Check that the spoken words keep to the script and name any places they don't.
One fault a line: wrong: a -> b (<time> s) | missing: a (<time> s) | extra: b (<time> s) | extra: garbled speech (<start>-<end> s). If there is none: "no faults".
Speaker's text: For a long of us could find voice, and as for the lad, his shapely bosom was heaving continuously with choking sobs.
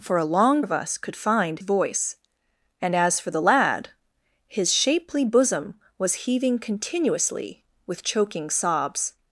no faults